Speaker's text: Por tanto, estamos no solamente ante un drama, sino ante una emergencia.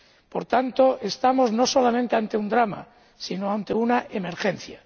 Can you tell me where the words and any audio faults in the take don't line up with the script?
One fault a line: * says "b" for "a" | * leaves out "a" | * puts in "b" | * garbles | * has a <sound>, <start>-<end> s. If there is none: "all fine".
all fine